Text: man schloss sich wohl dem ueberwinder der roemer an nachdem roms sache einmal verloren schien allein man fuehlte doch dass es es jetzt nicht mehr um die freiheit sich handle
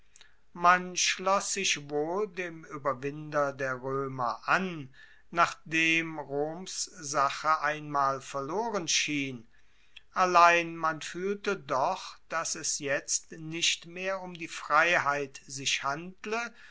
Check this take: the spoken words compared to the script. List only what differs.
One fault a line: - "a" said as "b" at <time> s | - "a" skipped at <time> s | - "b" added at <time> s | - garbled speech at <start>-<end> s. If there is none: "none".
- "es" skipped at 12.8 s